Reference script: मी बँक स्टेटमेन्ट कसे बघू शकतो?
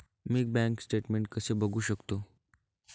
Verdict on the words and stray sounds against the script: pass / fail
pass